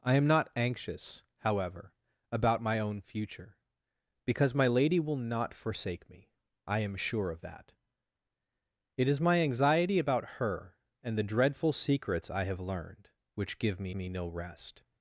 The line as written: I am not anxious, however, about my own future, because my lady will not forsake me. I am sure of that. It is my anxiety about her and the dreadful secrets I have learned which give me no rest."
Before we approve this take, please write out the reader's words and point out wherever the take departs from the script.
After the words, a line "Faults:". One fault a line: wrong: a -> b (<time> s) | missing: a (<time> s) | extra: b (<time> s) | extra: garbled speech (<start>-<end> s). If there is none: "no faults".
I am not anxious, however, about my own future, because my lady will not forsake me. I am sure of that. It is my anxiety about her and the dreadful secrets I have learned which give me me no rest."
Faults:
extra: me (13.9 s)